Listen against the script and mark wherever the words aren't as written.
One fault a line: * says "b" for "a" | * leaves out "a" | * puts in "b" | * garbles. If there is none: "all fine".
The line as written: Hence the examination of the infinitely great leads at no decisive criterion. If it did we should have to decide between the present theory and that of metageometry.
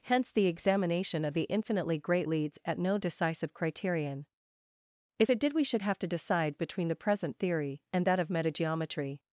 all fine